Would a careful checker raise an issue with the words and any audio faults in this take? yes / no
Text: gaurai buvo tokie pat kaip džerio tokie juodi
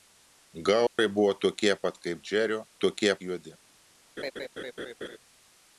yes